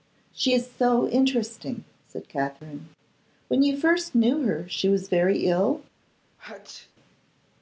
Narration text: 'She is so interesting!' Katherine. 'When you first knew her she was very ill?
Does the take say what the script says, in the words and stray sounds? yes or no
no